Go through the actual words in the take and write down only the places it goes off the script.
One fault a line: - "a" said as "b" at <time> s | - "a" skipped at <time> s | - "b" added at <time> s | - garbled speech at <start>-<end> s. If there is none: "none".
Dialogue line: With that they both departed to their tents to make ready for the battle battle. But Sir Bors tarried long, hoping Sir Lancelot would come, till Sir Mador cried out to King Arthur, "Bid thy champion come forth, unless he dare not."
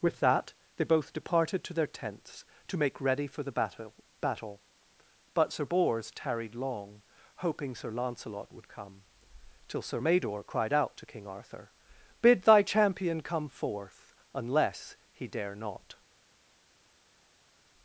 none